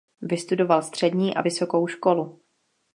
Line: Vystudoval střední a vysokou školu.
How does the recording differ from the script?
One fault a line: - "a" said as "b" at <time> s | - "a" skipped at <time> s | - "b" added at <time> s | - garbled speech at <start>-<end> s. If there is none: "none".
none